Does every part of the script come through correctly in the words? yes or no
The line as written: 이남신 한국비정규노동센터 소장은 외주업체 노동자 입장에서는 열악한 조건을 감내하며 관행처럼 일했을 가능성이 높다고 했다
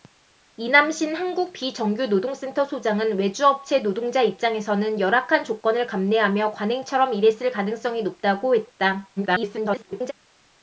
no